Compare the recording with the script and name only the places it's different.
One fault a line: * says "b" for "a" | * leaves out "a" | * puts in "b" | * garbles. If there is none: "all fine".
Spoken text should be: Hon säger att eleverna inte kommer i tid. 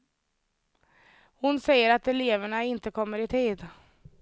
all fine